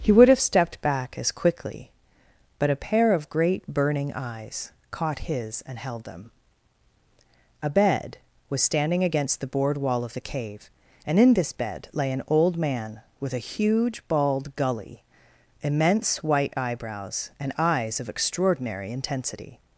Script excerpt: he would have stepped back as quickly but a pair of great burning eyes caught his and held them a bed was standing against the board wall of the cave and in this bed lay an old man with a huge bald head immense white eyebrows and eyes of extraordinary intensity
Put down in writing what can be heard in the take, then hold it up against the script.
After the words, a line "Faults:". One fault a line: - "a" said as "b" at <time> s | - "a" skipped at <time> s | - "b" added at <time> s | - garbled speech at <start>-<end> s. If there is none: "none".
he would have stepped back as quickly but a pair of great burning eyes caught his and held them a bed was standing against the board wall of the cave and in this bed lay an old man with a huge bald gully immense white eyebrows and eyes of extraordinary intensity
Faults:
- "head" said as "gully" at 14.5 s